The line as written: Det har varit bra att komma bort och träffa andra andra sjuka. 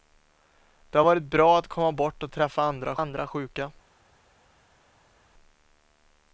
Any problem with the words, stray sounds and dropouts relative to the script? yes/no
no